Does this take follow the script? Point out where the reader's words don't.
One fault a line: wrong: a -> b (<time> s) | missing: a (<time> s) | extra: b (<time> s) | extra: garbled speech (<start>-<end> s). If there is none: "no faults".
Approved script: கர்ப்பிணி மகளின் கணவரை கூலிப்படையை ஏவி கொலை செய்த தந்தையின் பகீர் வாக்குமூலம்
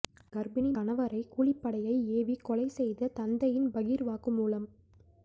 missing: மகளின் (0.7 s)